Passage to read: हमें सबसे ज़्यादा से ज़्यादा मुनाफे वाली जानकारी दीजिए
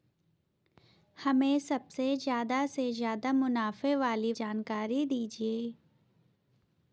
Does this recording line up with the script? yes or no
yes